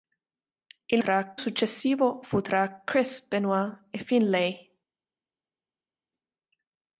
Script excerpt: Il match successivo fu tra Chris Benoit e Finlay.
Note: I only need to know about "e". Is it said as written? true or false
true